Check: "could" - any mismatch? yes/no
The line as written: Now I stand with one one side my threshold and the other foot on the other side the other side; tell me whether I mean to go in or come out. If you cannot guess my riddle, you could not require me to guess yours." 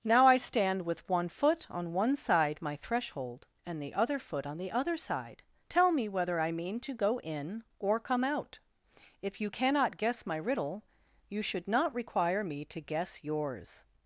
yes